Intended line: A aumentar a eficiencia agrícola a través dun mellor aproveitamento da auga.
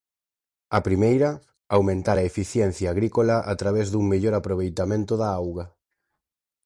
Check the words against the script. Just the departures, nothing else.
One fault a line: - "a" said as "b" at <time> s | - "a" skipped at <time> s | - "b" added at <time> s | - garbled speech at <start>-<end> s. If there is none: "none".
- "primeira" added at 0.9 s